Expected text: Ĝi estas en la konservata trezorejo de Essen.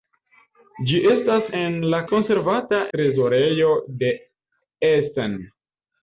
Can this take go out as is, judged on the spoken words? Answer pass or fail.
pass